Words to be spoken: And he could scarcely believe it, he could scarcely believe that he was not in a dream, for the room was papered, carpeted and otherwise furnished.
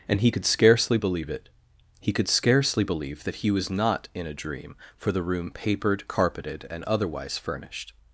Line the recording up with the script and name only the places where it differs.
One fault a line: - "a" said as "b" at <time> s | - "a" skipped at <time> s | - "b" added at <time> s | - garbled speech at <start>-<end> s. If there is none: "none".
- "was" skipped at 5.5 s